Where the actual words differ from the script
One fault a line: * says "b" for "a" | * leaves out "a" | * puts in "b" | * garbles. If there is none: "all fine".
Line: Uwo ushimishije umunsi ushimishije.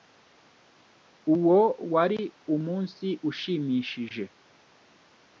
* says "wari" for "ushimishije"